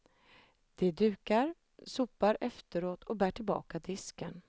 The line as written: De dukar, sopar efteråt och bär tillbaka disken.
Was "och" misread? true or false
false